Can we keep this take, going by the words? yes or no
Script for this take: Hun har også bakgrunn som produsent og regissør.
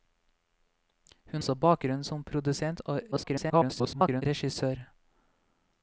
no